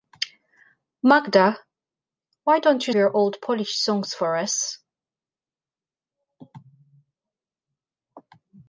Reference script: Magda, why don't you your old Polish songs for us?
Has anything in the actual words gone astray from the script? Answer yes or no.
no